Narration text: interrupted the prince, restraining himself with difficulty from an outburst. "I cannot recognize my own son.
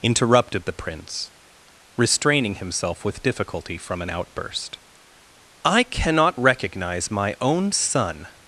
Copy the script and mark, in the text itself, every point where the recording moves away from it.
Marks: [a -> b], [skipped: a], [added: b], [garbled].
interrupted the prince, restraining himself with difficulty from an outburst. "I cannot recognize my own son.